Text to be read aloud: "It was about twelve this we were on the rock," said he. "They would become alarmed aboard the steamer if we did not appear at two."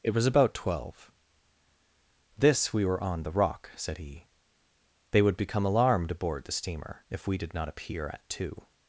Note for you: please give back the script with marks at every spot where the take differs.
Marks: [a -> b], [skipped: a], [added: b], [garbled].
"It was about twelve this we were on the rock," said he. "They would become alarmed aboard the steamer if we did not appear at two."